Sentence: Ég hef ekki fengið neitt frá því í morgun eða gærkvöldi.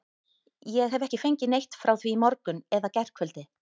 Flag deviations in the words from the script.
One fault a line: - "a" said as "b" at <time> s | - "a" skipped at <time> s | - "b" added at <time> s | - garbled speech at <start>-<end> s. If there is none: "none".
none